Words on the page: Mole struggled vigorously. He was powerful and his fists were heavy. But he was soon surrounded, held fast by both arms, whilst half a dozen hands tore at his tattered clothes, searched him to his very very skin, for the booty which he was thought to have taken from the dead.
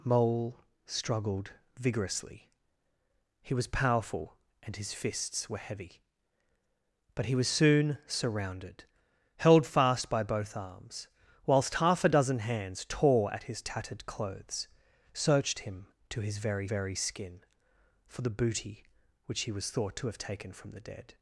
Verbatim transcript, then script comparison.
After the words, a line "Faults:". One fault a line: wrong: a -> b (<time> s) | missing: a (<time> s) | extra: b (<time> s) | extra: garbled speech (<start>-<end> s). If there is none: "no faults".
Mole struggled vigorously. He was powerful and his fists were heavy. But he was soon surrounded, held fast by both arms, whilst half a dozen hands tore at his tattered clothes, searched him to his very very skin, for the booty which he was thought to have taken from the dead.
Faults:
no faults